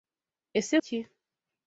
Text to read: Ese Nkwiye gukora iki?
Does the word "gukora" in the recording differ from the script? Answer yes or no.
yes